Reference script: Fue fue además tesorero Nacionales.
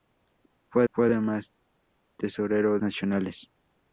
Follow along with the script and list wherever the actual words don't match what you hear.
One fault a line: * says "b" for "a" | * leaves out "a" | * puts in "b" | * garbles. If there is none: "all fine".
all fine